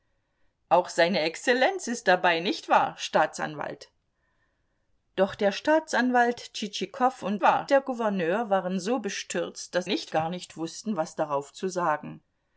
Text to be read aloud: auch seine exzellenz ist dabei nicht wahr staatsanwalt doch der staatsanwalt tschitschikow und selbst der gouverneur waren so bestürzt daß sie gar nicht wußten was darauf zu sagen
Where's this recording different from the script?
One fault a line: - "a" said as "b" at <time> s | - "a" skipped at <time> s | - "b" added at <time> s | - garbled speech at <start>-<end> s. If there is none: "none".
- "selbst" said as "wahr" at 7.4 s
- "sie" said as "nicht" at 9.8 s